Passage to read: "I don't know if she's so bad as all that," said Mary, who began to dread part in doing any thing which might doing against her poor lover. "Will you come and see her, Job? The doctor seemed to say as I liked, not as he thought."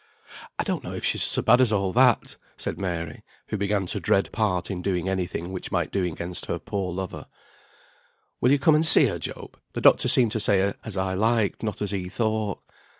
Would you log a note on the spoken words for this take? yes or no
no